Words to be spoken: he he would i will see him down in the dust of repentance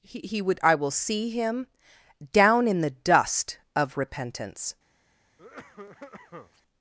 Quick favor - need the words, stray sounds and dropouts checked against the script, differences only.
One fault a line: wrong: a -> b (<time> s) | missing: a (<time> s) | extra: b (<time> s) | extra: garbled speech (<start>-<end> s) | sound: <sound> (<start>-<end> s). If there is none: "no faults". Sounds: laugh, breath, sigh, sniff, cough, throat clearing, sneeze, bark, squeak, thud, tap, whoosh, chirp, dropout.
sound: cough (5.4-6.6 s)